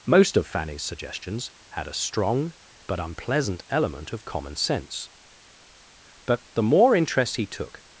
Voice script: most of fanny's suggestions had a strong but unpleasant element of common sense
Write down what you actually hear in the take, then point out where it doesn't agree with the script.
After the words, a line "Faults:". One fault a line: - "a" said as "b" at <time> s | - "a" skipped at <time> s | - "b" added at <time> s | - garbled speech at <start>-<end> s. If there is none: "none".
most of fanny's suggestions had a strong but unpleasant element of common sense but the more interest he took
Faults:
- "but the more interest he took" added at 6.2 s